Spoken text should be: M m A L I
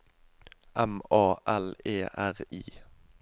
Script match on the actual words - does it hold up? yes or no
no